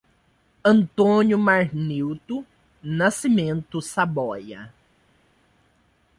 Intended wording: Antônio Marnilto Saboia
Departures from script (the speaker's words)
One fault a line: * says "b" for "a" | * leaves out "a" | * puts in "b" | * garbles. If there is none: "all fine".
* puts in "Nascimento"